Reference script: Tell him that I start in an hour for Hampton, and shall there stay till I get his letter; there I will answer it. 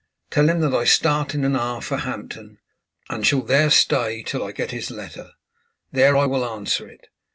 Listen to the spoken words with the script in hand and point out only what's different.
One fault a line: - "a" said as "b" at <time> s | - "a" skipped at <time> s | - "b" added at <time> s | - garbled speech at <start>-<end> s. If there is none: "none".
none